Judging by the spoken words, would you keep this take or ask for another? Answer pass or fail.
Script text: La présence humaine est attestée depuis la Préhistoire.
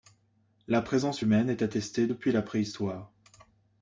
pass